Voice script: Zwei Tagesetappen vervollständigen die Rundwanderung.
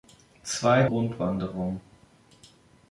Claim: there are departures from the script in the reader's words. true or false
true